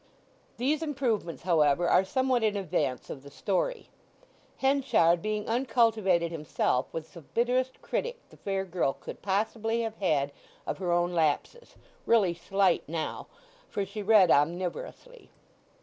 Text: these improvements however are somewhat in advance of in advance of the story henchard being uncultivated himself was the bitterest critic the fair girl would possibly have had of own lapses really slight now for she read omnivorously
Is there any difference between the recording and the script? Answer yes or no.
yes